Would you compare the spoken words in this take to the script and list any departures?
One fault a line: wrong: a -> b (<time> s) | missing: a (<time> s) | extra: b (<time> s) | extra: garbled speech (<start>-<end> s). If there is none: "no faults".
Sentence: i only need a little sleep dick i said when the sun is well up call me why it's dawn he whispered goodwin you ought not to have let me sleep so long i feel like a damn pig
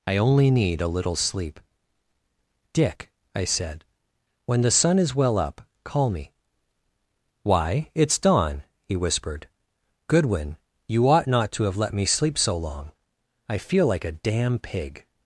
no faults